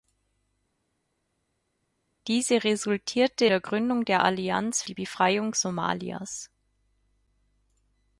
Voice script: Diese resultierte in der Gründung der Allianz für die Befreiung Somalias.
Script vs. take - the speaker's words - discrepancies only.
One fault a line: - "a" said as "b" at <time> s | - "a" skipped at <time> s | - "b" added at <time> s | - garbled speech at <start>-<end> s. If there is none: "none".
- "in" skipped at 3.5 s
- "für" skipped at 4.8 s